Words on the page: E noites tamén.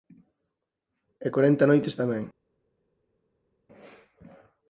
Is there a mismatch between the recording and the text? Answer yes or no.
yes